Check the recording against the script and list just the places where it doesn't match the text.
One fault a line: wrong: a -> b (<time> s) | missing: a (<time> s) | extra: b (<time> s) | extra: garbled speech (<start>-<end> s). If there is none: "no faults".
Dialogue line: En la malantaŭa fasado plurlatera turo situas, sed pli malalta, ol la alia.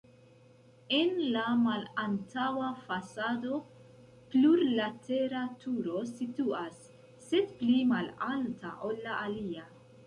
no faults